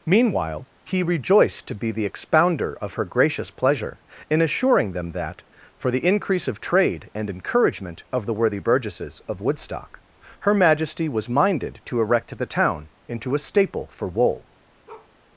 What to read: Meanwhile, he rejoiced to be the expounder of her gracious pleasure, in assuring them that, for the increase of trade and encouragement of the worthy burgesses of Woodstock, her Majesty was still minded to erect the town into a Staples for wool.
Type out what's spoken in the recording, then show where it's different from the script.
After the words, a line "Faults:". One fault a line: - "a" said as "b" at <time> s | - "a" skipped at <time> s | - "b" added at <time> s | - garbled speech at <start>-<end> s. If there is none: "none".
Meanwhile, he rejoiced to be the expounder of her gracious pleasure, in assuring them that, for the increase of trade and encouragement of the worthy burgesses of Woodstock, her Majesty was minded to erect the town into a Staple for wool.
Faults:
- "still" skipped at 11.3 s
- "Staples" said as "Staple" at 13.4 s